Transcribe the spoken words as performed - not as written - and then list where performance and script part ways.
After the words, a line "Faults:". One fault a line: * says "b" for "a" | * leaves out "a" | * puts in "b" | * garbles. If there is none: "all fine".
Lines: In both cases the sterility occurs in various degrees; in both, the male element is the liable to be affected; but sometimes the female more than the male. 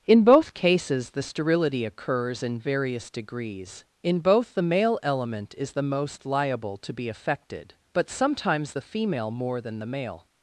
In both cases the sterility occurs in various degrees; in both, the male element is the most liable to be affected; but sometimes the female more than the male.
Faults:
* puts in "most"